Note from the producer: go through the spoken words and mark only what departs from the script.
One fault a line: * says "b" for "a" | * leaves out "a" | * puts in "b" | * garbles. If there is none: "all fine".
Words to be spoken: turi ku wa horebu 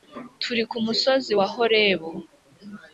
* puts in "musozi"